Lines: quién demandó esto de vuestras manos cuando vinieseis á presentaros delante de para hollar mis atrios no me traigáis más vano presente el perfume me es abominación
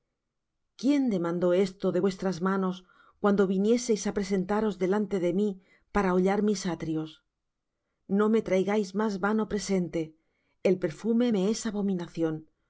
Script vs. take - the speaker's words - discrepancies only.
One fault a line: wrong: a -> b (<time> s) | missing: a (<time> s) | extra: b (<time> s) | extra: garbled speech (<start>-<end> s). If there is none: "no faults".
extra: mí (5.4 s)